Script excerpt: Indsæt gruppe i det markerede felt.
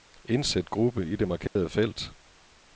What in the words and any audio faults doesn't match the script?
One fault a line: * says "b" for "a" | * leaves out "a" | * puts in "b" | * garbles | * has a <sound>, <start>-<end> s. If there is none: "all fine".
* has a dropout, 1.5-1.6 s